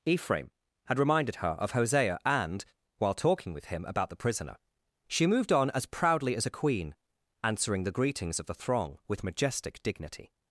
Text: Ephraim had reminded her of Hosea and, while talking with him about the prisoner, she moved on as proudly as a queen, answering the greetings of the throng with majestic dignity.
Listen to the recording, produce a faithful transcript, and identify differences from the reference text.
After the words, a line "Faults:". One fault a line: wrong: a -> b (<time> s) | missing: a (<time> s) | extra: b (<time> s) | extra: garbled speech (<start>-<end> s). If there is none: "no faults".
Ephraim had reminded her of Hosea and, while talking with him about the prisoner, she moved on as proudly as a queen, answering the greetings of the throng with majestic dignity.
Faults:
no faults